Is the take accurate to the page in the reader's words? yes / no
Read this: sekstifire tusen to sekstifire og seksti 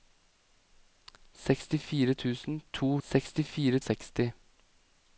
yes